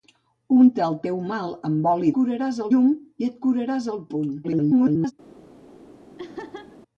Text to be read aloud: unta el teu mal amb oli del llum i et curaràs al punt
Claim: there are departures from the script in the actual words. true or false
true